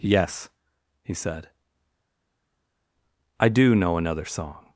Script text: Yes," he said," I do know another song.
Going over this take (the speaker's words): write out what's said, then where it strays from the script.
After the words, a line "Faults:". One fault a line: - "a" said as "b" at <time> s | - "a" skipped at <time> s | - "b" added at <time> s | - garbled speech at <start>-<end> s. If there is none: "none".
Yes," he said," I do know another song.
Faults:
none